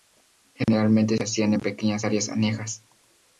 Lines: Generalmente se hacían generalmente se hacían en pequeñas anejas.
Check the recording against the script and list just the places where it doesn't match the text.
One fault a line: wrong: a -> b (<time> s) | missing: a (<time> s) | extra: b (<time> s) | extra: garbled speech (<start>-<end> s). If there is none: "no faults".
missing: generalmente se hacían (1.5 s)
extra: áreas (2.0 s)